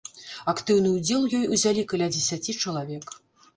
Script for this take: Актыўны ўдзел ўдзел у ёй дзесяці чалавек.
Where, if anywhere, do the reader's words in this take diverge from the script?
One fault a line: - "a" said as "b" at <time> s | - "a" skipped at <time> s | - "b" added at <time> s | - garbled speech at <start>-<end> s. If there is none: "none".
- "ўдзел" skipped at 1.3 s
- "узялі каля" added at 1.6 s